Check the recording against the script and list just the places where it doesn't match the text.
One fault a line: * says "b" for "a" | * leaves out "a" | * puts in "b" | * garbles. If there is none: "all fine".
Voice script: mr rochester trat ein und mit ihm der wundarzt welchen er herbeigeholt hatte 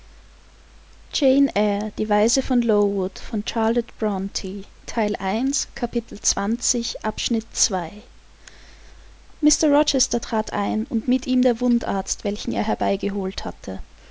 all fine